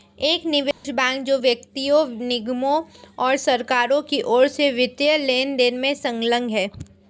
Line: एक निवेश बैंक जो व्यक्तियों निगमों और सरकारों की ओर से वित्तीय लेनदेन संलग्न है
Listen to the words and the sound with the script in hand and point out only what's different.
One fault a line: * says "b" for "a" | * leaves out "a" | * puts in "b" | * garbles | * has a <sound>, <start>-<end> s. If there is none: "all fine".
* has a dropout, 0.7-0.8 s
* puts in "में"